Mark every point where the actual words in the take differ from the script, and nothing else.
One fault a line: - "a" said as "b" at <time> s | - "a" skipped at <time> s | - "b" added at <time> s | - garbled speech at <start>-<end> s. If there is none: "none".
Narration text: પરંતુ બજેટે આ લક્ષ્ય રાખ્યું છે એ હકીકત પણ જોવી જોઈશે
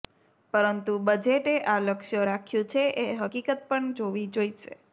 none